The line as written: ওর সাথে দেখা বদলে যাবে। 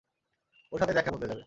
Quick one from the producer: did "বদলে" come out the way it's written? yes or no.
yes